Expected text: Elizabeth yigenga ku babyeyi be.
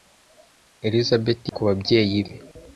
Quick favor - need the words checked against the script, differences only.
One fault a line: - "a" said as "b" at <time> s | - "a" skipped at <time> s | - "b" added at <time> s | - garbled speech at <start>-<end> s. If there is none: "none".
- "yigenga" skipped at 1.4 s